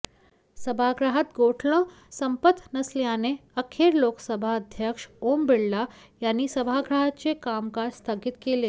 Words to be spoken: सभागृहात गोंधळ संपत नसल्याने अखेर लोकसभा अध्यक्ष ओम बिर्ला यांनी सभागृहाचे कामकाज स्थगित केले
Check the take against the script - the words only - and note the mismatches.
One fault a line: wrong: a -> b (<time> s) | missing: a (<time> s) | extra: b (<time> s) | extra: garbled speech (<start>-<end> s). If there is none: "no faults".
no faults